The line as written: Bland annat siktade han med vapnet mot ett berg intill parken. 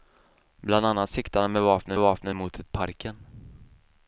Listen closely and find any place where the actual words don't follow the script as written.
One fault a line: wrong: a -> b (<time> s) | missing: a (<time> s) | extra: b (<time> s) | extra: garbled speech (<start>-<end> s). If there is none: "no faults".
extra: vapnet (2.0 s)
missing: berg intill (2.7 s)